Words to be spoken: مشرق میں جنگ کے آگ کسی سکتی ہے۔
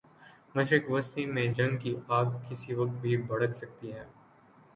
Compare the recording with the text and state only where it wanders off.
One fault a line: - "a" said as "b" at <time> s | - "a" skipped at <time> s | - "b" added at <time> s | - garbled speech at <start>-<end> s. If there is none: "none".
- "وسطی" added at 0.9 s
- "کے" said as "کی" at 1.8 s
- "وقت بھی بھڑک" added at 2.7 s